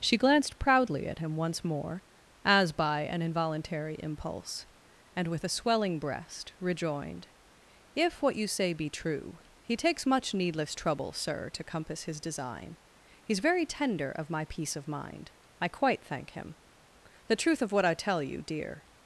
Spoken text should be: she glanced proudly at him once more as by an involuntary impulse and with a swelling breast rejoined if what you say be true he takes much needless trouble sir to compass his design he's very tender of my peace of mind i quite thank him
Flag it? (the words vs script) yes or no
yes